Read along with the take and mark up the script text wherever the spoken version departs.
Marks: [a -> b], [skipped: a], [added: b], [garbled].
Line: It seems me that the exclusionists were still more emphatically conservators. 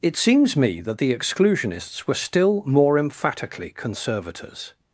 It seems me that the exclusionists were still more emphatically conservators.